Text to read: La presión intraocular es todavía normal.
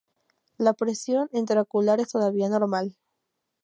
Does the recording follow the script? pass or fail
pass